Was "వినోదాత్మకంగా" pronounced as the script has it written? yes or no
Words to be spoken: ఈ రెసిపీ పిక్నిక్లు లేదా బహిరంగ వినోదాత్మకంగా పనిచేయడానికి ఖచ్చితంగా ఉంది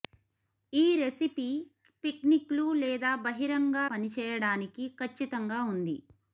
no